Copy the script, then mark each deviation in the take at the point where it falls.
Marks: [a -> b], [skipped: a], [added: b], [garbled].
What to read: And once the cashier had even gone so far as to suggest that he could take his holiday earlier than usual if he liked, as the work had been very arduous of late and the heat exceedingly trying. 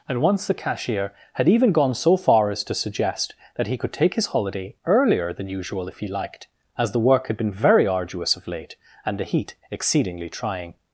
And once the cashier had even gone so far as to suggest that he could take his holiday earlier than usual if he liked, as the work had been very arduous of late and the heat exceedingly trying.